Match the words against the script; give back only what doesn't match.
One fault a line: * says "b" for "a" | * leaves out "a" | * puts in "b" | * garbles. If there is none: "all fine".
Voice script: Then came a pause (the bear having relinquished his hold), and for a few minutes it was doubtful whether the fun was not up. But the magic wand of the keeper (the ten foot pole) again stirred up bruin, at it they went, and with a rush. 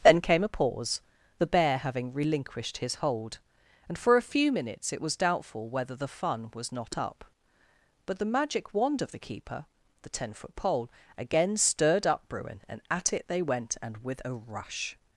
* puts in "and"